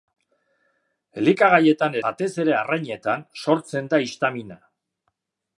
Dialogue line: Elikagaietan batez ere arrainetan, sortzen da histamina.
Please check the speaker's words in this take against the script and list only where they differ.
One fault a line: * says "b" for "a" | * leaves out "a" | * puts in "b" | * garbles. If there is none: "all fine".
all fine